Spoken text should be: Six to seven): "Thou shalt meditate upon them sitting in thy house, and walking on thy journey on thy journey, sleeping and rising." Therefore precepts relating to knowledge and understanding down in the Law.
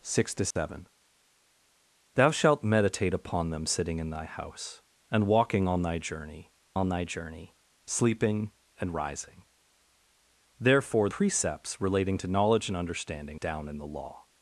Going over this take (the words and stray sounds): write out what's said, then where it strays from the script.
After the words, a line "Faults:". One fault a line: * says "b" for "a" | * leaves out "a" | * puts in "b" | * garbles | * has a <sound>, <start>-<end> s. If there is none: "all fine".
Six to seven): "Thou shalt meditate upon them sitting in thy house, and walking on thy journey on thy journey, sleeping and rising." Therefore precepts relating to knowledge and understanding down in the Law.
Faults:
* has a dropout, 0.5-0.6 s